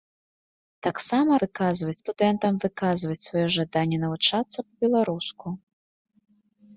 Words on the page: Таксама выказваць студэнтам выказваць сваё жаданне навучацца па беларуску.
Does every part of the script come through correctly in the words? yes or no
yes